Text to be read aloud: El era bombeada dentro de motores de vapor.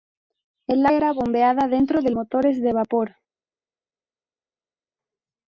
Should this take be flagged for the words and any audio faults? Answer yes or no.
no